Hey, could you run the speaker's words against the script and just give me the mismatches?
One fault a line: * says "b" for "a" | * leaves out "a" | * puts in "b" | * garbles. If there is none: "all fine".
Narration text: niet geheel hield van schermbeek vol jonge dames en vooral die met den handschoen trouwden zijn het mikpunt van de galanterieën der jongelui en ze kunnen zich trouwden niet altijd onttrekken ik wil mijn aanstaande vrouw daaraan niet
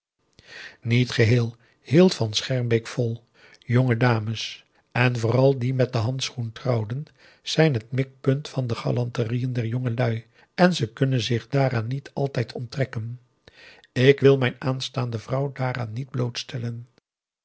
* says "daaraan" for "trouwden"